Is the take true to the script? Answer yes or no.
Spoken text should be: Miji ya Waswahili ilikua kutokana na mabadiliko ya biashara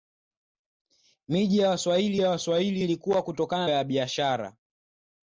no